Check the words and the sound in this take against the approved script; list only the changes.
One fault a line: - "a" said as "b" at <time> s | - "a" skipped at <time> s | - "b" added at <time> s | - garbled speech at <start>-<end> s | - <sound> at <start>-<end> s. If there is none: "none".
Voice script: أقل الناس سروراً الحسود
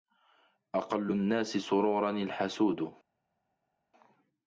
none